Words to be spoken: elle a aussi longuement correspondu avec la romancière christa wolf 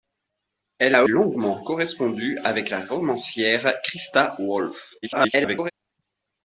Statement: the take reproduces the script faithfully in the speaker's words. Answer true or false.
false